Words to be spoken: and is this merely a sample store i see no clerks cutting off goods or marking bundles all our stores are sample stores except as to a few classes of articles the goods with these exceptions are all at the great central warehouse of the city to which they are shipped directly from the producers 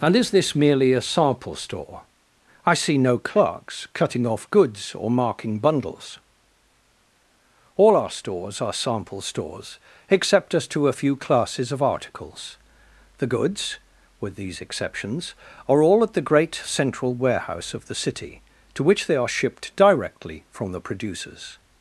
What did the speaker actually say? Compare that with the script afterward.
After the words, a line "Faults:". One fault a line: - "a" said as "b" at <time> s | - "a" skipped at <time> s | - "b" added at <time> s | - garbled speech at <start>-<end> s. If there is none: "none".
and is this merely a sample store i see no clerks cutting off goods or marking bundles all our stores are sample stores except as to a few classes of articles the goods with these exceptions are all at the great central warehouse of the city to which they are shipped directly from the producers
Faults:
none